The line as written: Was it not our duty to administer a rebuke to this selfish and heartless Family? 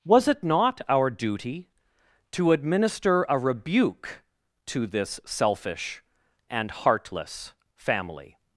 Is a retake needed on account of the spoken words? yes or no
no